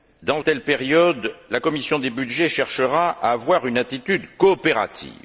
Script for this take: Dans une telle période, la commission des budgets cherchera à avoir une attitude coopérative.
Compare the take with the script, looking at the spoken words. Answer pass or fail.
fail